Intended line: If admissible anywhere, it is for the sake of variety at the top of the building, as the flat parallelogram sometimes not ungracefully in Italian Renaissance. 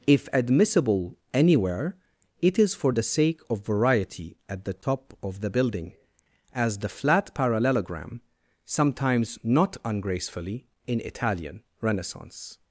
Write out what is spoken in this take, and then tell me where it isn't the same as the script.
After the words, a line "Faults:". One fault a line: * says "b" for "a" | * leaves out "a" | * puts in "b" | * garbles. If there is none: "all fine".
If admissible anywhere, it is for the sake of variety at the top of the building, as the flat parallelogram sometimes not ungracefully in Italian Renaissance.
Faults:
all fine